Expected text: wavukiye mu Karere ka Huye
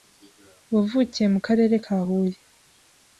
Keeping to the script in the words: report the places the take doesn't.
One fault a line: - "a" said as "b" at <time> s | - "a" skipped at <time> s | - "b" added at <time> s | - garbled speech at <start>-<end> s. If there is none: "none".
none